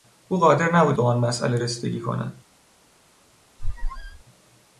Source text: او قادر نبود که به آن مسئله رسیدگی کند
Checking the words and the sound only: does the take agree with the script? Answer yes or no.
no